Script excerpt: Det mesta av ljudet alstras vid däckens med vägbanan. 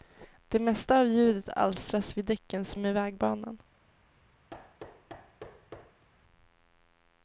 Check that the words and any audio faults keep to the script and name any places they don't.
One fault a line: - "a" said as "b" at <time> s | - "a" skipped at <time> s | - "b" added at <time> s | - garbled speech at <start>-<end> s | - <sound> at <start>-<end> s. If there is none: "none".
- thud at 4.5-6.0 s